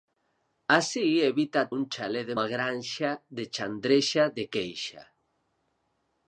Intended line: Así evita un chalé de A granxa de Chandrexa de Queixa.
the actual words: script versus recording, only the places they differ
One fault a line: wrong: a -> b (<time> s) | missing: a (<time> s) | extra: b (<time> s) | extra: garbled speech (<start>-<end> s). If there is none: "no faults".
no faults